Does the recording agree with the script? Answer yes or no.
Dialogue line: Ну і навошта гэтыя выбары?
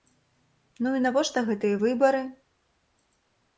yes